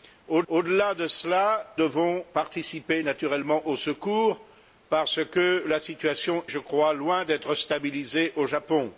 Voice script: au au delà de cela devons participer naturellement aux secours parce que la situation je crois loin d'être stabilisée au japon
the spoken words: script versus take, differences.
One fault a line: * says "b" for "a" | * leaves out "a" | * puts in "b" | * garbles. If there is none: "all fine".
all fine